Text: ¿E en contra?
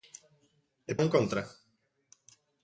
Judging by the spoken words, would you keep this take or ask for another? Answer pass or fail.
pass